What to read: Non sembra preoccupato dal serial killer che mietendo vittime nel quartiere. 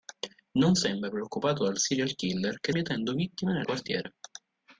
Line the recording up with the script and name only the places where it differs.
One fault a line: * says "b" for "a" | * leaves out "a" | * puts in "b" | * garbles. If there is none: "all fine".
all fine